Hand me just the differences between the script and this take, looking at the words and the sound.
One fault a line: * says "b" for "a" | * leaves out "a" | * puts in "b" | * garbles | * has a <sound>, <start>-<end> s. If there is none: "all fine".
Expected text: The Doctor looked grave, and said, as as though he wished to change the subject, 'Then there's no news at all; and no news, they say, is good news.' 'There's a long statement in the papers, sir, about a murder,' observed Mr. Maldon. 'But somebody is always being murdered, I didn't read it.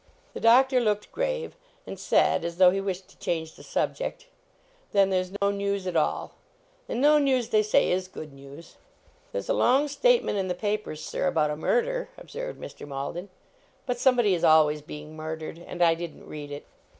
* leaves out "as"
* has a dropout, 5.4-5.4 s
* puts in "and"